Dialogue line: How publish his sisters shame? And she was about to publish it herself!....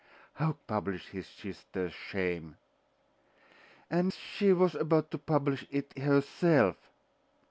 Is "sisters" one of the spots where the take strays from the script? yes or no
no